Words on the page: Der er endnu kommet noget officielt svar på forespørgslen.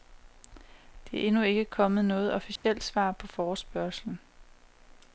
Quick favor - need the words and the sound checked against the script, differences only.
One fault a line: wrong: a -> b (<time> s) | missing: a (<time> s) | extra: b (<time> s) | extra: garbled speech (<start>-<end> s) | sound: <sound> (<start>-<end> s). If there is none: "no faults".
extra: ikke (1.4 s)
sound: dropout (2.6-2.6 s)